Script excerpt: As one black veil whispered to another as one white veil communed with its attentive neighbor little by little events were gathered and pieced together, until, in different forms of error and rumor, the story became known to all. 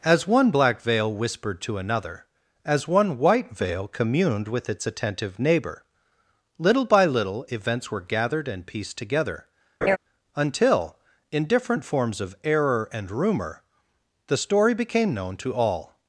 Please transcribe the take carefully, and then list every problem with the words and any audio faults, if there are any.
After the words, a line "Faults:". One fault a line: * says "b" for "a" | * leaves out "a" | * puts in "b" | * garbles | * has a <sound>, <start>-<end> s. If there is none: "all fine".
As one black veil whispered to another as one white veil communed with its attentive neighbor little by little events were gathered and pieced together, until, in different forms of error and rumor, the story became known to all.
Faults:
* has a laugh, 9.8-10.0 s